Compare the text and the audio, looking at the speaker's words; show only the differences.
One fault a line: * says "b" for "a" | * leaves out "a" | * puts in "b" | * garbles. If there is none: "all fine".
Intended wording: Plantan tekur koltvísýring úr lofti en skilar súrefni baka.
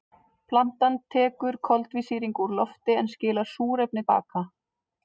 all fine